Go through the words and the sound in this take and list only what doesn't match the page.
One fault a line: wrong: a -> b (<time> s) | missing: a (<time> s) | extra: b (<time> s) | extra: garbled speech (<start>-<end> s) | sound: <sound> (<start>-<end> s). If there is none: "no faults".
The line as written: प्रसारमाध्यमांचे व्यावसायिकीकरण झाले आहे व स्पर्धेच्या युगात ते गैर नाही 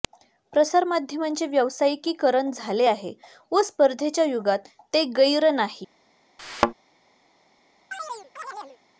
sound: thud (6.4-6.7 s)
sound: chirp (7.9-8.8 s)